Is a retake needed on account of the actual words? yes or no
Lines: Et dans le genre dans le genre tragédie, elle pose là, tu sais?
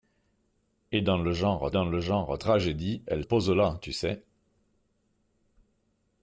no